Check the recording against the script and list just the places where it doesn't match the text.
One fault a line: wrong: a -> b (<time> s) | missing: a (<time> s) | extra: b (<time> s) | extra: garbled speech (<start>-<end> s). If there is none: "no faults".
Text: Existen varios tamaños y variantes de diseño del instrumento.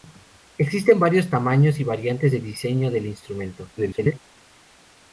extra: garbled speech (3.8-4.2 s)